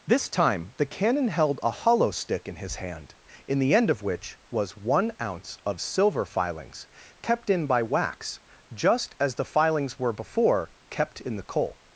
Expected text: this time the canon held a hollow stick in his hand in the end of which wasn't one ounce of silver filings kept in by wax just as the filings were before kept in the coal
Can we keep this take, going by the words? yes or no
no